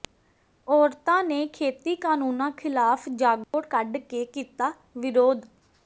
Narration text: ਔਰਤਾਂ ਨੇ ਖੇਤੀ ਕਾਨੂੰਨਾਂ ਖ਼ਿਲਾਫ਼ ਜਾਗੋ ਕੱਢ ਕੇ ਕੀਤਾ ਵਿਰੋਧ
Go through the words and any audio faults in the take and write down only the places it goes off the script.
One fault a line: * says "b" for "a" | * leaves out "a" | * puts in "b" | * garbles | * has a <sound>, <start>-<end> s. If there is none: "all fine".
* has a dropout, 3.4-3.5 s